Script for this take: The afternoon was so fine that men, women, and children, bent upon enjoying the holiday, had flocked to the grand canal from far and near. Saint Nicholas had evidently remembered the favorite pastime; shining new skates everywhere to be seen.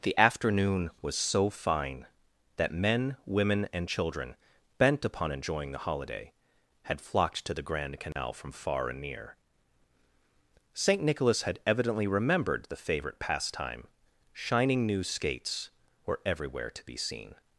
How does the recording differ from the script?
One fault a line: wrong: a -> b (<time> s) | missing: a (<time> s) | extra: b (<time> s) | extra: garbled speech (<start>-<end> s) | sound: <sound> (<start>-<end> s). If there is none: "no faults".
sound: dropout (8.1-8.2 s)
extra: were (16.1 s)